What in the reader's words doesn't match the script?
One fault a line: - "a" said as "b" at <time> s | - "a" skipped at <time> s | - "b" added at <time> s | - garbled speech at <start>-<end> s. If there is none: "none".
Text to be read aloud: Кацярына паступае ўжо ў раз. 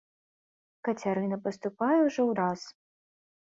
none